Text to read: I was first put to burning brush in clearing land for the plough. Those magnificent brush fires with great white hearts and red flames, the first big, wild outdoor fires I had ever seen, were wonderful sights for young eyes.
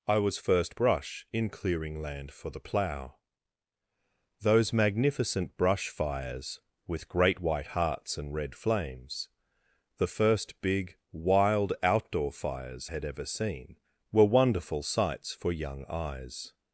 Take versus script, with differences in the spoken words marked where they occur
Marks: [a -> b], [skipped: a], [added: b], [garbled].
I was first [skipped: put to burning] brush in clearing land for the plough. Those magnificent brush fires with great white hearts and red flames, the first big, wild outdoor fires [skipped: I] had ever seen, were wonderful sights for young eyes.